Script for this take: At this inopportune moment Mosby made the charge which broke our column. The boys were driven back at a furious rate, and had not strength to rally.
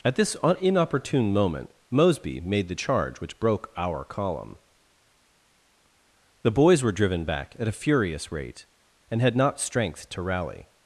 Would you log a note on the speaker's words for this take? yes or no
no